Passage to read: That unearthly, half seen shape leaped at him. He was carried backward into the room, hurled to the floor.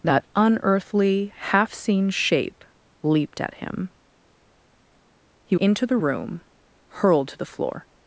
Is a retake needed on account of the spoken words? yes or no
yes